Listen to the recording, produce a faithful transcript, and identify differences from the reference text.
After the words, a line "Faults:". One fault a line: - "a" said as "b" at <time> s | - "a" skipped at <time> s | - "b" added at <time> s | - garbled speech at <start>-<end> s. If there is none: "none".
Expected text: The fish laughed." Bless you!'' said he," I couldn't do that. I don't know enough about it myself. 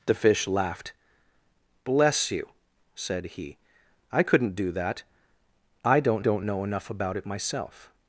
The fish laughed." Bless you!'' said he," I couldn't do that. I don't don't know enough about it myself.
Faults:
- "don't" added at 6.2 s